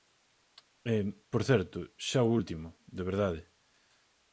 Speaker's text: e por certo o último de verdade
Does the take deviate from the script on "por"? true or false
false